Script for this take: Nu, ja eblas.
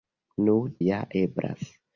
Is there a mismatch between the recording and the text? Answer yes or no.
no